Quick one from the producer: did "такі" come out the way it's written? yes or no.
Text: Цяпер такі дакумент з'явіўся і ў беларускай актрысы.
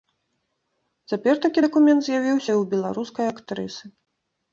yes